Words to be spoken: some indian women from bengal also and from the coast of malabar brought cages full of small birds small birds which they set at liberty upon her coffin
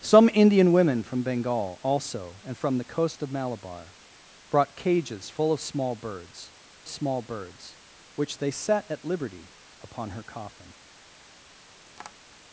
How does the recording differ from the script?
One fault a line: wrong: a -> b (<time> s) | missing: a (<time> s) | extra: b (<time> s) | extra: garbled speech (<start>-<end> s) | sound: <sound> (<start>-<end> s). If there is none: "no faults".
sound: tap (11.9-12.2 s)